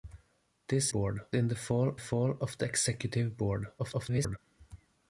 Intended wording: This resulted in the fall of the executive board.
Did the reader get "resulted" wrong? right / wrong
wrong